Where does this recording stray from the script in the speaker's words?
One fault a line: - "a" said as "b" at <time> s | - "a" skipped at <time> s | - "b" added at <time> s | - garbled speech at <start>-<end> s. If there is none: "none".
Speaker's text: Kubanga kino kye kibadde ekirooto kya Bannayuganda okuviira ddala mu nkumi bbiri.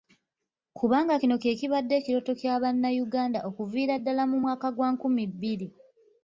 - "mwaka gwa" added at 4.4 s